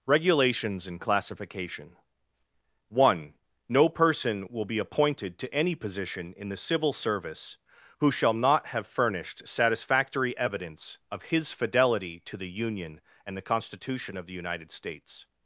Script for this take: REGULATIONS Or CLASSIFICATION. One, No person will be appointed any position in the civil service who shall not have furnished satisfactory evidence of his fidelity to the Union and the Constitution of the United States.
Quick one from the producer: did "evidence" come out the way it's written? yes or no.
yes